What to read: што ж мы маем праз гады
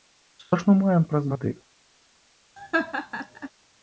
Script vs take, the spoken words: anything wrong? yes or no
no